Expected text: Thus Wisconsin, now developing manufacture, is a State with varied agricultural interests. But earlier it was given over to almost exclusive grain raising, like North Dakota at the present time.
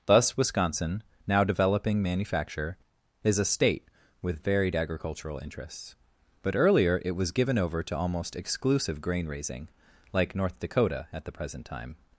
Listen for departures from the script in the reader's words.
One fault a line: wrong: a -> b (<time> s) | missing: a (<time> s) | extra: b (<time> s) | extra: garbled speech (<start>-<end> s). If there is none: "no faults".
no faults